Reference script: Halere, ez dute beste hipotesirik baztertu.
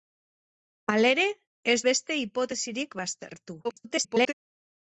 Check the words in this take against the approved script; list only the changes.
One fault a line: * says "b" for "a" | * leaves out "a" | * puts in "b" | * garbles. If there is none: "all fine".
* leaves out "dute"
* garbles